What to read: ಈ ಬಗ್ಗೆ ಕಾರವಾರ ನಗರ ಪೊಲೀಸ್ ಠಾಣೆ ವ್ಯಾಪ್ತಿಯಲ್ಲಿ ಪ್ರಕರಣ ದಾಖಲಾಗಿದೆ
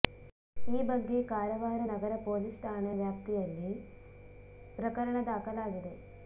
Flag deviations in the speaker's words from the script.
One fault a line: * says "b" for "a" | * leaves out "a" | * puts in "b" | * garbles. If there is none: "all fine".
all fine